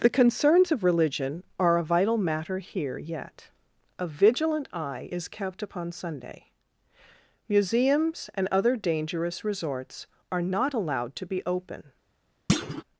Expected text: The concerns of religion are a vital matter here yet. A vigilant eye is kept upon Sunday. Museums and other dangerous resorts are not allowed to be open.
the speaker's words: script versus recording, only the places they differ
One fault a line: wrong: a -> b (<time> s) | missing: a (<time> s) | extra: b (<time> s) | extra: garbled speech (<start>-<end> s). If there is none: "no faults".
no faults